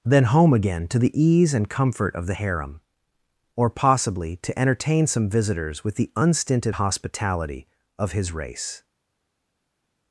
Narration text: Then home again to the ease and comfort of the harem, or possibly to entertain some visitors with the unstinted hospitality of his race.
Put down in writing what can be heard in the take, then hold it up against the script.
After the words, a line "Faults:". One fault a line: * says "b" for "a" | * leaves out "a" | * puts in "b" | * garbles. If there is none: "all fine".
Then home again to the ease and comfort of the harem, or possibly to entertain some visitors with the unstinted hospitality of his race.
Faults:
all fine